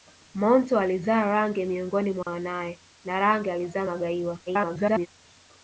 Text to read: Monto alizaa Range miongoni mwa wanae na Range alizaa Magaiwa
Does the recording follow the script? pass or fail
fail